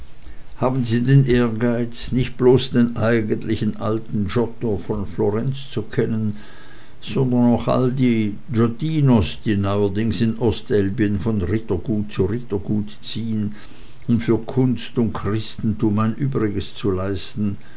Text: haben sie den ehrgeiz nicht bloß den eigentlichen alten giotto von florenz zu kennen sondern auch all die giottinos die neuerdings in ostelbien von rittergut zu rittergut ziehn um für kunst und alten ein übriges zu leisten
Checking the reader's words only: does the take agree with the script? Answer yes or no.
no